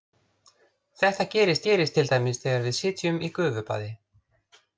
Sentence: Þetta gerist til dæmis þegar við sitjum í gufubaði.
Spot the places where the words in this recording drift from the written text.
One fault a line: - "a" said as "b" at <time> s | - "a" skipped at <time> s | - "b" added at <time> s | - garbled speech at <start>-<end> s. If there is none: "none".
- "gerist" added at 1.7 s